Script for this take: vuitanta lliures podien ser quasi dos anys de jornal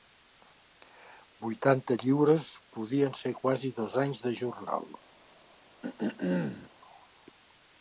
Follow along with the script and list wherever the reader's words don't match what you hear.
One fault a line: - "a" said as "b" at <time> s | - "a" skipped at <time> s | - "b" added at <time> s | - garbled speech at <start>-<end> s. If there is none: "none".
none